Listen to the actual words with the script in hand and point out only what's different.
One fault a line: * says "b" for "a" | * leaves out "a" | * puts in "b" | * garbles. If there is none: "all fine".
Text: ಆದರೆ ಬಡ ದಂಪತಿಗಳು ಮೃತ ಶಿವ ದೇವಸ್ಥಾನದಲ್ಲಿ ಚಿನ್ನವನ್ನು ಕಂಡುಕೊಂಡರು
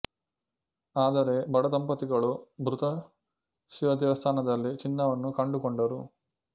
all fine